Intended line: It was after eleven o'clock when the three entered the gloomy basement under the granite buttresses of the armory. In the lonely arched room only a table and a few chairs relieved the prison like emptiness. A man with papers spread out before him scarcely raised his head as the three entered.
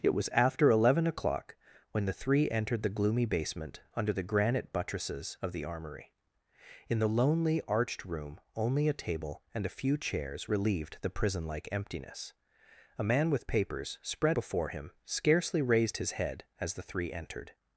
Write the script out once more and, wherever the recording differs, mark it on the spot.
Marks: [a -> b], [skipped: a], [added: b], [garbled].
It was after eleven o'clock when the three entered the gloomy basement under the granite buttresses of the armory. In the lonely arched room only a table and a few chairs relieved the prison like emptiness. A man with papers spread [skipped: out] before him scarcely raised his head as the three entered.